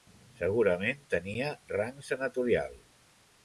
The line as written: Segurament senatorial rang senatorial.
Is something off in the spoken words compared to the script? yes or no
yes